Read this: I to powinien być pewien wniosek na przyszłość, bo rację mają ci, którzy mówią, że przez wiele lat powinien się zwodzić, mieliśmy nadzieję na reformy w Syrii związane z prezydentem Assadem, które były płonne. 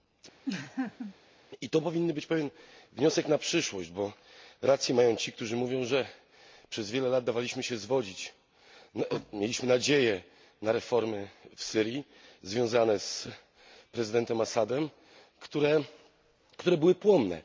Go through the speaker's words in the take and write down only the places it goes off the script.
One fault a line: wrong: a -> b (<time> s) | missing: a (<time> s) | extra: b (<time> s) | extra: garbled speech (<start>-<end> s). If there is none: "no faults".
wrong: powinien -> dawaliśmy (7.2 s)